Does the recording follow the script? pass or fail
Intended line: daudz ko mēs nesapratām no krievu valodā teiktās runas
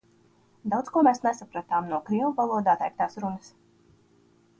pass